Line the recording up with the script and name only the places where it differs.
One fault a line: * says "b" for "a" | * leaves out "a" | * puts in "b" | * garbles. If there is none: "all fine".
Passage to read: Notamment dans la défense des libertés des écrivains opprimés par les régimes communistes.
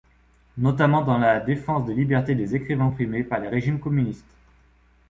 all fine